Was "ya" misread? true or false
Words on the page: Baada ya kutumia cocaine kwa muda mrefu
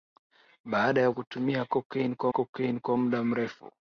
false